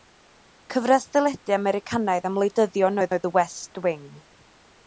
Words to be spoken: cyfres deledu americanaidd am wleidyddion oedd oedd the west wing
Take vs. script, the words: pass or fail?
pass